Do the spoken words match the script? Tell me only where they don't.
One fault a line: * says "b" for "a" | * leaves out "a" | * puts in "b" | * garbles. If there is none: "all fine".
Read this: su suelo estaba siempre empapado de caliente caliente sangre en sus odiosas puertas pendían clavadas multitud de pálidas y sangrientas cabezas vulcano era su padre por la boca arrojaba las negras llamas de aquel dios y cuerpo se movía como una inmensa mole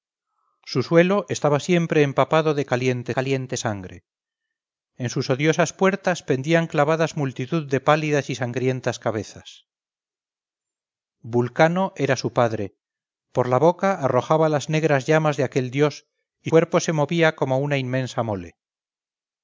all fine